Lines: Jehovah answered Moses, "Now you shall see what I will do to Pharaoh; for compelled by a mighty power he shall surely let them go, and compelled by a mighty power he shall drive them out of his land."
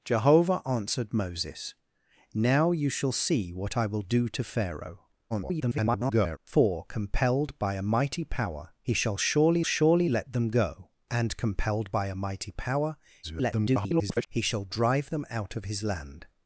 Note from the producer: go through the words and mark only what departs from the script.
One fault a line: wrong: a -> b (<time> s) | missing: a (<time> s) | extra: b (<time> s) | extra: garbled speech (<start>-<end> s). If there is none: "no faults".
extra: garbled speech (5.3-6.4 s)
extra: surely (9.6 s)
extra: garbled speech (13.2-14.3 s)